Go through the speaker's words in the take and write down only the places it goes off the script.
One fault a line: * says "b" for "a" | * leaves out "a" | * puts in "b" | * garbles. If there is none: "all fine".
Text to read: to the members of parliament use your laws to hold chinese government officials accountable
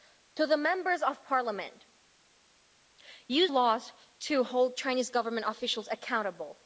* leaves out "your"